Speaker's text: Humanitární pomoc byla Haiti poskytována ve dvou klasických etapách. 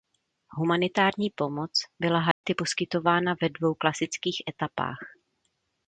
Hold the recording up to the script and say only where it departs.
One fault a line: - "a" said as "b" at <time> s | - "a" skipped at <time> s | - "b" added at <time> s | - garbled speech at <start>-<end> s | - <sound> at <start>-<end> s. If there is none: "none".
- dropout at 2.3-2.4 s